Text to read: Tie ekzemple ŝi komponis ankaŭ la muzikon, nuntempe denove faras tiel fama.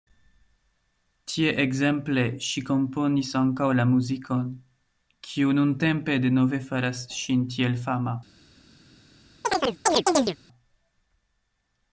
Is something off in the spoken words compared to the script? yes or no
yes